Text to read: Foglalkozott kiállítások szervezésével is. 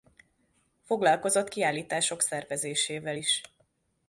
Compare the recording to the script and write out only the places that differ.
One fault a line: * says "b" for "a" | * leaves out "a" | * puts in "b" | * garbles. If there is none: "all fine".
all fine